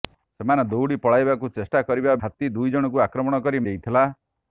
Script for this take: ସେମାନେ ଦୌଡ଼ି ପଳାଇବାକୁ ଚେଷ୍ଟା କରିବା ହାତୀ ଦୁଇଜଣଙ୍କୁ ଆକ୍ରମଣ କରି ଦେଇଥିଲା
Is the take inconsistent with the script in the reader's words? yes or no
no